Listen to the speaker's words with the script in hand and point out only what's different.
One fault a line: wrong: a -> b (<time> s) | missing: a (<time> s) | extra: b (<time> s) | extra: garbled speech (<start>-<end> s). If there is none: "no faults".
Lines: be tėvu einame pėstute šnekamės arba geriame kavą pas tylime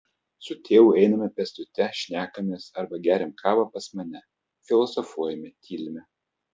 wrong: be -> su (0.5 s)
extra: mane filosofuojame (4.0 s)